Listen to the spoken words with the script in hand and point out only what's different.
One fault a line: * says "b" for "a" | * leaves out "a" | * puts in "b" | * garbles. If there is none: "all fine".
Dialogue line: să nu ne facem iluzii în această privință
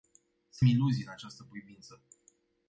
* leaves out "nu ne facem"